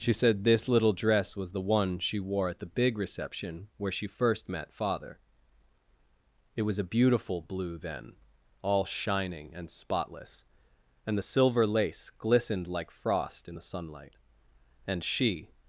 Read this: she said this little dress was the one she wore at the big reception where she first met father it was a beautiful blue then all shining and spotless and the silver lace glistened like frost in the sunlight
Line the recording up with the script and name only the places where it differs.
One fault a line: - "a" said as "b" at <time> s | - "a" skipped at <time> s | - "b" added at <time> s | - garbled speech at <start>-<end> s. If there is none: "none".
- "and she" added at 14.8 s